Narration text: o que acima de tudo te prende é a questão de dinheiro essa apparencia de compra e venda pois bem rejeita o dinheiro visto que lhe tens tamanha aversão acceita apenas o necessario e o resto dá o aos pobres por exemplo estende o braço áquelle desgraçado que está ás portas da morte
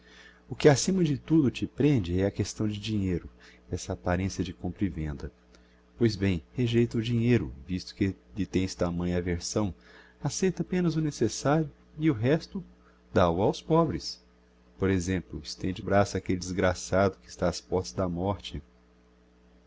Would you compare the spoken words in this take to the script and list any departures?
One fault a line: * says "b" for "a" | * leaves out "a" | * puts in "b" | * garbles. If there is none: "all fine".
all fine